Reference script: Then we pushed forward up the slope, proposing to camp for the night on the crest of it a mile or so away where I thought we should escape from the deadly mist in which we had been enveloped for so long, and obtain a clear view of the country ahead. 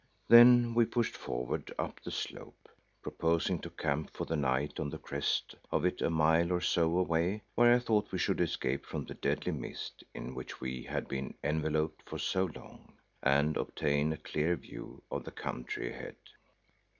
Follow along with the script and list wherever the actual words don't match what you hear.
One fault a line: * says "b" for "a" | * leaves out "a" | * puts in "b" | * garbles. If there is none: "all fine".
all fine